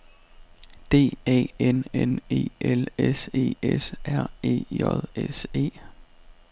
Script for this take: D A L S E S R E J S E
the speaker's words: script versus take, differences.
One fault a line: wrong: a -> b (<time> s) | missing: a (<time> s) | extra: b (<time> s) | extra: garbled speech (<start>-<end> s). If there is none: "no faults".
extra: N N E (1.6 s)